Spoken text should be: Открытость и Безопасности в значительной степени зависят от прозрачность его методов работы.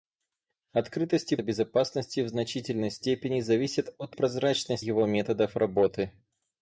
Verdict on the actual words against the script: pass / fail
pass